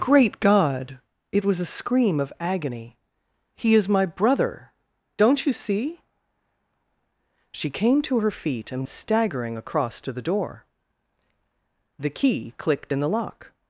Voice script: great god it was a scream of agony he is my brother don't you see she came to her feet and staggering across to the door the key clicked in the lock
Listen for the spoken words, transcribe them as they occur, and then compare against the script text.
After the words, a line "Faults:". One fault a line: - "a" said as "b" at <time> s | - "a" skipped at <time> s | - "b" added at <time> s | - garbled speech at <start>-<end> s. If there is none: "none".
great god it was a scream of agony he is my brother don't you see she came to her feet and staggering across to the door the key clicked in the lock
Faults:
none